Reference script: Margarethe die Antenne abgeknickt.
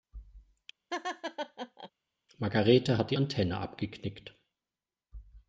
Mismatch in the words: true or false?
true